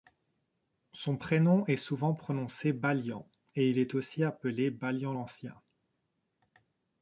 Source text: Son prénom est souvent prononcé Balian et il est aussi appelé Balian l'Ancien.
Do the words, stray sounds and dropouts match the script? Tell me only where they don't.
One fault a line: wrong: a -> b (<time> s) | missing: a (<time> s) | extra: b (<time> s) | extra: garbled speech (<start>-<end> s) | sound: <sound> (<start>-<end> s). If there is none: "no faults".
no faults